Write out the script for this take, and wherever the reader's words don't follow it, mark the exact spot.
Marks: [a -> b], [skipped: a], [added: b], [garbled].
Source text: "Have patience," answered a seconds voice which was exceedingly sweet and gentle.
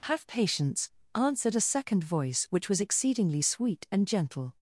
"Have patience," answered a [seconds -> second] voice which was exceedingly sweet and gentle.